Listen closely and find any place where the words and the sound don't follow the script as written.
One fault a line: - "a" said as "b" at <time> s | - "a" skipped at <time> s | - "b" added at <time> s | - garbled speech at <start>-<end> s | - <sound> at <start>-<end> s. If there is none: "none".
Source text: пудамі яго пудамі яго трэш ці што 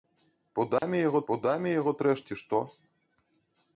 - dropout at 0.8-0.8 s